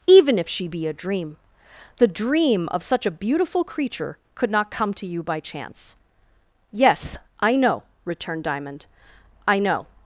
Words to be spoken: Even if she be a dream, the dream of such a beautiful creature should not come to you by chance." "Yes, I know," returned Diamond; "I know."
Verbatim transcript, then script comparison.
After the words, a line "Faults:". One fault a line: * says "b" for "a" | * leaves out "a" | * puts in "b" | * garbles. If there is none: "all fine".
Even if she be a dream, the dream of such a beautiful creature could not come to you by chance." "Yes, I know," returned Diamond; "I know."
Faults:
* says "could" for "should"